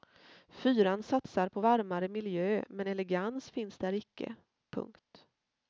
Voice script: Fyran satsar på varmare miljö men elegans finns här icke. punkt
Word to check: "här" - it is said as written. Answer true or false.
false